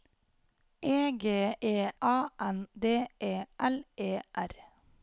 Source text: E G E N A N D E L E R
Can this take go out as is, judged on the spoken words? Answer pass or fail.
fail